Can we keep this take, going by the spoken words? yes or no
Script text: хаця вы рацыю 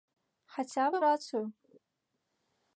yes